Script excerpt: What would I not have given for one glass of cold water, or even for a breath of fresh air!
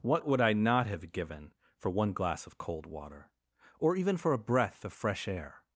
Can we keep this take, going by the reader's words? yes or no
yes